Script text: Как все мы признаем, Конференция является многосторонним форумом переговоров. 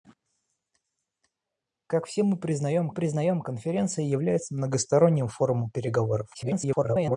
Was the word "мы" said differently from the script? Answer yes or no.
no